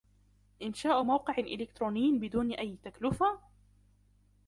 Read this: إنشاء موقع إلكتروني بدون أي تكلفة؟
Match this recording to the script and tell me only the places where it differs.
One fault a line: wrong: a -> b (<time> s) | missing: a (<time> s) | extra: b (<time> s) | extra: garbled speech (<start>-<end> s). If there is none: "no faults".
no faults